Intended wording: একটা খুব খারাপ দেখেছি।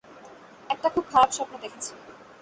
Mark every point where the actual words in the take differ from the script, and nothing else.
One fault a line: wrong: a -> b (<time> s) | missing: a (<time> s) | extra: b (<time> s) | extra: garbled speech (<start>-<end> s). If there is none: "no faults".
extra: স্বপ্ন (1.3 s)